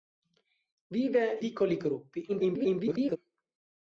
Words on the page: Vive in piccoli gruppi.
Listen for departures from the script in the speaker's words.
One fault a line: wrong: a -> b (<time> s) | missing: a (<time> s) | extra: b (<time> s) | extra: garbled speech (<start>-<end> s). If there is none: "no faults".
missing: in (1.4 s)
extra: garbled speech (2.3-3.2 s)